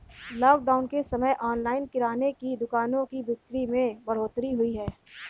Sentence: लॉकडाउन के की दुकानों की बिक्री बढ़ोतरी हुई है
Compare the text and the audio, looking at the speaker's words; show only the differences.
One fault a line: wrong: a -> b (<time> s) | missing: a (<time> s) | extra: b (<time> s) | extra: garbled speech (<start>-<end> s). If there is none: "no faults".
extra: समय ऑनलाइन किराने (1.0 s)
extra: में (3.7 s)